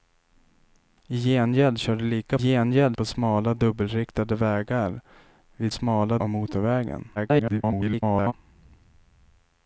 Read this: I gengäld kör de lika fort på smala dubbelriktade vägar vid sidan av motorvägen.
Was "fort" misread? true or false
true